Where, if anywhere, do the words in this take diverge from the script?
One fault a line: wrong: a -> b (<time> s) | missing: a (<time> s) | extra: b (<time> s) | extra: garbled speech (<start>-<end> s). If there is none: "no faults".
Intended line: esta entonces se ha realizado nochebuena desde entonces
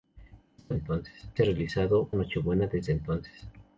no faults